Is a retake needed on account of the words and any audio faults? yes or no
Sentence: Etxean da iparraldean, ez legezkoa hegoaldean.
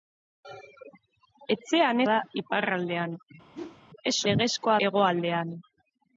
yes